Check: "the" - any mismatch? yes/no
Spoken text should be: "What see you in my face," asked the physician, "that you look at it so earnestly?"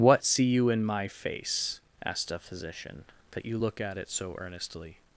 yes